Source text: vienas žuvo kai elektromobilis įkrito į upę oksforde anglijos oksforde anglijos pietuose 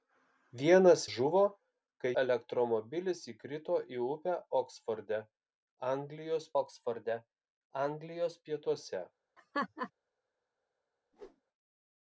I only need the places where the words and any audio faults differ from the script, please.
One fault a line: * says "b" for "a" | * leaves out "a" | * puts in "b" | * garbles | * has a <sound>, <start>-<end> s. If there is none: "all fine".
* has a laugh, 9.4-9.9 s
* has a whoosh, 11.1-11.4 s